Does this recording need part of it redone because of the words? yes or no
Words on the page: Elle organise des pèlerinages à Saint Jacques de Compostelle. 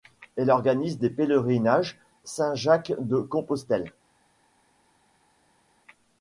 yes